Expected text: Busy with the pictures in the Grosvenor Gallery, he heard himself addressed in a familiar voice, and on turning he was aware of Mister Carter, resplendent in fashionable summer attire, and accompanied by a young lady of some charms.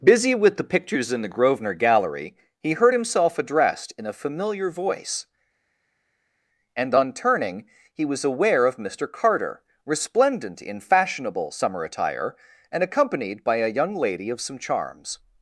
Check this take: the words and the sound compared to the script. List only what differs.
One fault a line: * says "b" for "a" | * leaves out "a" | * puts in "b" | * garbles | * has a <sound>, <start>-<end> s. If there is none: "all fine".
all fine